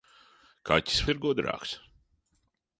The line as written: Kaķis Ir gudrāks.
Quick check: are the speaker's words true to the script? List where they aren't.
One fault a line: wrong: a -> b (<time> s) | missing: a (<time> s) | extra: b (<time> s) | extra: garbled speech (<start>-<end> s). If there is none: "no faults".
no faults